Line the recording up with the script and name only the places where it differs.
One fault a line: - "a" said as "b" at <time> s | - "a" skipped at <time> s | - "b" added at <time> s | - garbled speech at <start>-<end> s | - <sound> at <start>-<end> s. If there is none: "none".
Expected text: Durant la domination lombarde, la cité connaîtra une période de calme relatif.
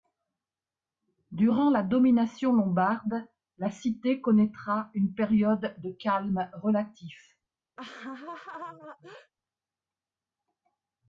- laugh at 7.8-9.3 s